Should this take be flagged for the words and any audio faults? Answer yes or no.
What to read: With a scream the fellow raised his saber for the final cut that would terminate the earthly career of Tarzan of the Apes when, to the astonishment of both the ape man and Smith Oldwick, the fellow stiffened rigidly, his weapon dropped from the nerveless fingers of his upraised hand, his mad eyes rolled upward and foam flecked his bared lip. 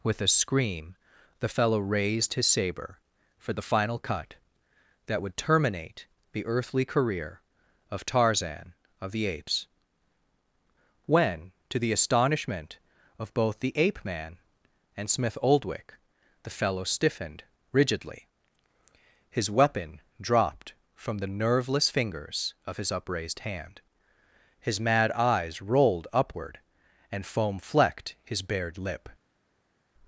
no